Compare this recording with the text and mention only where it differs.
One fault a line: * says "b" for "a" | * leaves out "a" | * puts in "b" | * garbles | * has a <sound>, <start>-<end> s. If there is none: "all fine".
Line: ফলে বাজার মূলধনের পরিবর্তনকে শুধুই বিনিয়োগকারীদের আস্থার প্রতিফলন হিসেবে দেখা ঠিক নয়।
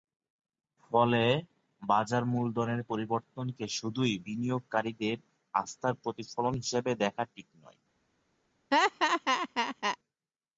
* has a laugh, 8.7-10.0 s